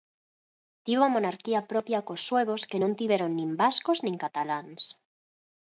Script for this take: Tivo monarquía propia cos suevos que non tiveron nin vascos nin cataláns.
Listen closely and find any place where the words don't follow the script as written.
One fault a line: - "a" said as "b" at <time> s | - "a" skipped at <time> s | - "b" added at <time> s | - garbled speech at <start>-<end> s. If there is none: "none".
none